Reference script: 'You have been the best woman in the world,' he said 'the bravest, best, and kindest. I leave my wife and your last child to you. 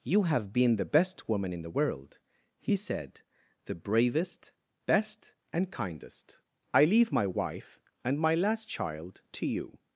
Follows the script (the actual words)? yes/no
no